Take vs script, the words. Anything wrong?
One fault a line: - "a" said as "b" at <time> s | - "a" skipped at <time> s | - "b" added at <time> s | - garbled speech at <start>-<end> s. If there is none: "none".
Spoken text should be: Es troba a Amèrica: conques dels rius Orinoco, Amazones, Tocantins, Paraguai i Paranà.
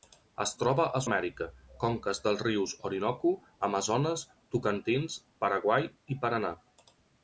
none